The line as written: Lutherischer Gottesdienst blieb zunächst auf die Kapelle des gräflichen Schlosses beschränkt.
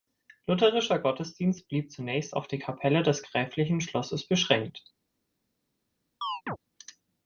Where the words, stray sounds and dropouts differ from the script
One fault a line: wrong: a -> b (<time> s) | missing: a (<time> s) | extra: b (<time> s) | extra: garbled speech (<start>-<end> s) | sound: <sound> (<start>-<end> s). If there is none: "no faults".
sound: chirp (6.2-6.6 s)